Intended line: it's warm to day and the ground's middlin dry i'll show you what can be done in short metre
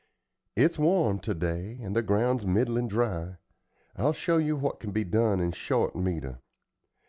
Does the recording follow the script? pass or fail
pass